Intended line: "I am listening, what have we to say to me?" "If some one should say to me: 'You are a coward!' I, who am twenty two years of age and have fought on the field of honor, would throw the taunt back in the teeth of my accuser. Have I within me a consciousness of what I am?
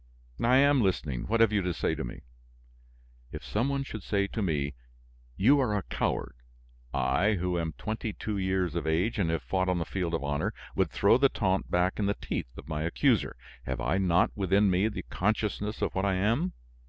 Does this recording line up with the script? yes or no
no